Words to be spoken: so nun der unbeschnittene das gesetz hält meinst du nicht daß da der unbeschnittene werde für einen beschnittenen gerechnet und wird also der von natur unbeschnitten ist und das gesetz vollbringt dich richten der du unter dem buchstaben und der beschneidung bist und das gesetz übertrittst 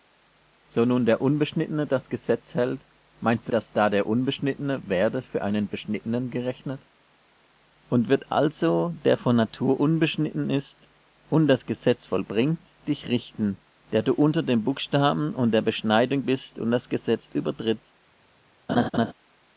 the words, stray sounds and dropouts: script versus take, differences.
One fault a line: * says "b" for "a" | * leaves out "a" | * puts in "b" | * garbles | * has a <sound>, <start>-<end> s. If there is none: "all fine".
* leaves out "nicht"
* has a laugh, 18.7-19.1 s